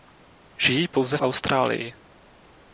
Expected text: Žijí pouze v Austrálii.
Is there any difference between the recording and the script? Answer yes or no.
yes